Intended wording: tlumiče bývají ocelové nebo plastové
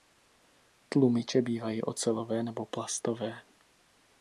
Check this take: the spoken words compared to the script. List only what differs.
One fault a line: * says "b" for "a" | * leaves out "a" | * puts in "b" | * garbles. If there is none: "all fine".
all fine